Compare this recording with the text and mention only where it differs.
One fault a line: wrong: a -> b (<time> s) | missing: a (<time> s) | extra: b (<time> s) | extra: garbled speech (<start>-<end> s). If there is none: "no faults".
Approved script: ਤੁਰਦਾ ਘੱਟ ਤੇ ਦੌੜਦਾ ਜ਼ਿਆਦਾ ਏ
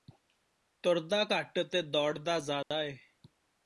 no faults